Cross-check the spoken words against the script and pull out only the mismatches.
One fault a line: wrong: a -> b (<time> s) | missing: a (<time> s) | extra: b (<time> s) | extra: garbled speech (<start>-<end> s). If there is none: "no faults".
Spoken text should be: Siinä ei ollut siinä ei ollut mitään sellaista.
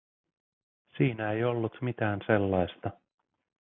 missing: siinä ei ollut (1.8 s)